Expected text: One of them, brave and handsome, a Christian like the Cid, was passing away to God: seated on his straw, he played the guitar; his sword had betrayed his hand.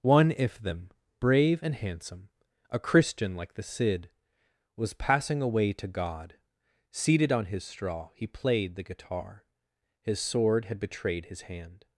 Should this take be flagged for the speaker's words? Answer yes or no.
yes